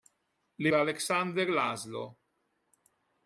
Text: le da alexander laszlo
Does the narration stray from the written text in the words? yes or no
no